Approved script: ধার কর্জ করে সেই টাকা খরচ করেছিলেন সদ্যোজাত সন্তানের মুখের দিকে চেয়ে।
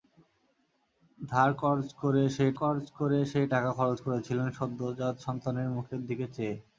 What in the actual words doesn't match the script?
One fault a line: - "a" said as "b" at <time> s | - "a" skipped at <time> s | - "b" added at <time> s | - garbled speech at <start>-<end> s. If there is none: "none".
- "কর্জ করে সেই" added at 2.6 s